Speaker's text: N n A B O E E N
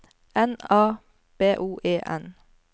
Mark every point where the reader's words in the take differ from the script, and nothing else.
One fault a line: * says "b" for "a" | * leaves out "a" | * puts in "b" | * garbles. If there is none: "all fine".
* leaves out "n"
* leaves out "E"